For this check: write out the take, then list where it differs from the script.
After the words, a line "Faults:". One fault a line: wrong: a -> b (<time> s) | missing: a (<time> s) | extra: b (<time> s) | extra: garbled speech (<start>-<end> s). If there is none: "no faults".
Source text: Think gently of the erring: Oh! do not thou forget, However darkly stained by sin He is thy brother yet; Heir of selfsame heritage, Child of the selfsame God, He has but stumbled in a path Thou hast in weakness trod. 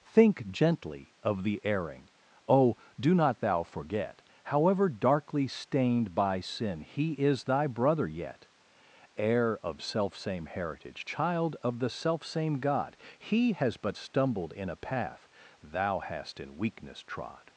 Think gently of the erring: Oh! do not thou forget, However darkly stained by sin He is thy brother yet; Heir of selfsame heritage, Child of the selfsame God, He has but stumbled in a path Thou hast in weakness trod.
Faults:
no faults